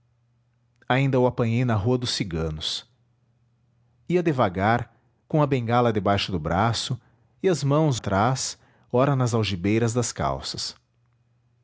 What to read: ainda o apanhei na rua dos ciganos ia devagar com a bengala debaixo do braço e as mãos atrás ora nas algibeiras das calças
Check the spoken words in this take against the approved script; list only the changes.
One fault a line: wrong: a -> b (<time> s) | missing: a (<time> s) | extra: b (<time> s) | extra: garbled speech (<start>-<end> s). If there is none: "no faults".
no faults